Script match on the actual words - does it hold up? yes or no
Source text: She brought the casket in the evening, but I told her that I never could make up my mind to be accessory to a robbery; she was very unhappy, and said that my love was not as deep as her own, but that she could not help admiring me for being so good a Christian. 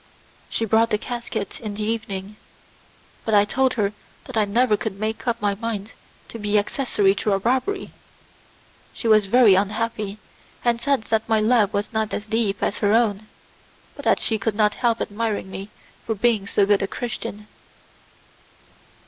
yes